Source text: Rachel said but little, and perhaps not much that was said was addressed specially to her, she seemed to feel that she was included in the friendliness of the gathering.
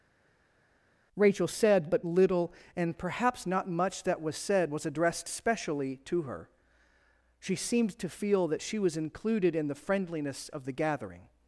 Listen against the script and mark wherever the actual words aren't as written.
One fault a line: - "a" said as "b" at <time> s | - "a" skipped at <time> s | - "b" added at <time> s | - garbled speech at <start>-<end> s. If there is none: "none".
none